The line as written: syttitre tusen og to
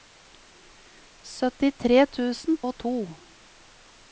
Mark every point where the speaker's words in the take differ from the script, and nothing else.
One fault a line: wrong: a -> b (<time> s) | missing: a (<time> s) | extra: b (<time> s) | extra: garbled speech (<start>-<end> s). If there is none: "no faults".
no faults